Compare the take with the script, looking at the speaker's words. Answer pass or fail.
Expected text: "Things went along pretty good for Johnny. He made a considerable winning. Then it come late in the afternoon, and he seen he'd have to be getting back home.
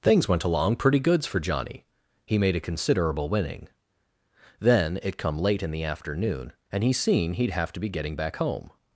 fail